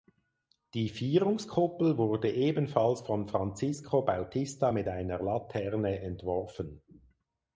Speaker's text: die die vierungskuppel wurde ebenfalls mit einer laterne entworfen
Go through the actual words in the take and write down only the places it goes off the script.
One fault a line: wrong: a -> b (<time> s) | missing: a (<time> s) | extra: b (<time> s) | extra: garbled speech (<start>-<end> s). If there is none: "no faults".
missing: die (0.9 s)
extra: von francisco bautista (3.0 s)